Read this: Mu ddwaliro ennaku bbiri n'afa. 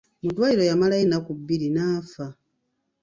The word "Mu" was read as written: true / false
true